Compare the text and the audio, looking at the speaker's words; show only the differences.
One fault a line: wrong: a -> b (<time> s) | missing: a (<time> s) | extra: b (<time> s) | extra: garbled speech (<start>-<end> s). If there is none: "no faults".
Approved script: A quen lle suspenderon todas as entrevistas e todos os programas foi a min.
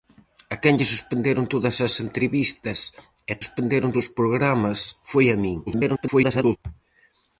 wrong: todos -> suspenderon (3.4 s)
extra: garbled speech (5.7-6.6 s)